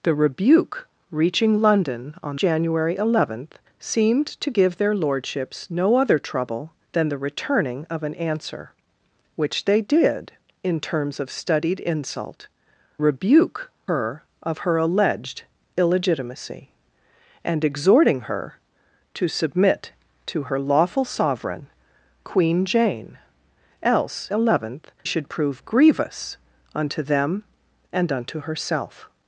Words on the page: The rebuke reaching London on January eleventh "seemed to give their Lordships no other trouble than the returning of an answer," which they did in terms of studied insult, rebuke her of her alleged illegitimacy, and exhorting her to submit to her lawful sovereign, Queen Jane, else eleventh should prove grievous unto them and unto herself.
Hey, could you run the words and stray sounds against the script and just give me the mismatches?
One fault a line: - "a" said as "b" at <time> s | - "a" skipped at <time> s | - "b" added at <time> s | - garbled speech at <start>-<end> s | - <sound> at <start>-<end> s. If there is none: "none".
none